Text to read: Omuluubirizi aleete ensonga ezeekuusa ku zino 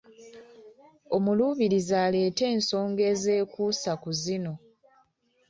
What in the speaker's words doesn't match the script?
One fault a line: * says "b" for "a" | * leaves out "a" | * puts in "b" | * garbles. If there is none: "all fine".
all fine